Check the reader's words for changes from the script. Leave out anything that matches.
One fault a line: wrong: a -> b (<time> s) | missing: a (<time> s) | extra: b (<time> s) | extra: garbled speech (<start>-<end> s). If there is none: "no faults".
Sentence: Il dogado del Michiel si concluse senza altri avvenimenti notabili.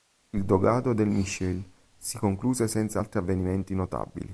no faults